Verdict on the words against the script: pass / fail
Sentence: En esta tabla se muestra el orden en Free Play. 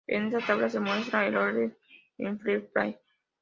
pass